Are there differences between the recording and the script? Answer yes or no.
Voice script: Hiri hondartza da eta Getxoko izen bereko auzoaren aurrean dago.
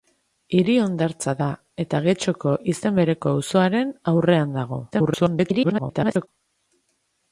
yes